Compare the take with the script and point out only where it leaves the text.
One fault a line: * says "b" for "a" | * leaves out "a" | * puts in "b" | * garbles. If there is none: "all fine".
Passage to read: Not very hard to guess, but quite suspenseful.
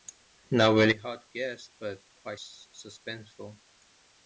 all fine